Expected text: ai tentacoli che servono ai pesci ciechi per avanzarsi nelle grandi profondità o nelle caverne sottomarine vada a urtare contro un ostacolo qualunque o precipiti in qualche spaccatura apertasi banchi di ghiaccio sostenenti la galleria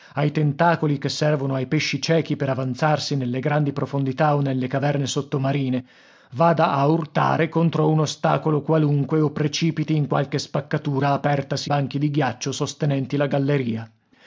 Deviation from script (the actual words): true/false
false